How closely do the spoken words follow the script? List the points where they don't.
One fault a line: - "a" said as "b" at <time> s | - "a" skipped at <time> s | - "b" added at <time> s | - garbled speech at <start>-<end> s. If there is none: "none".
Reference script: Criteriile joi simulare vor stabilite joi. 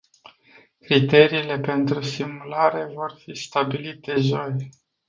- "joi" said as "pentru" at 1.6 s
- "fi" added at 3.2 s